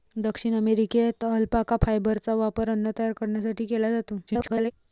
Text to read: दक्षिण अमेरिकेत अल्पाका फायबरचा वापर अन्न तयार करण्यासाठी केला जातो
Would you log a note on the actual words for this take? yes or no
yes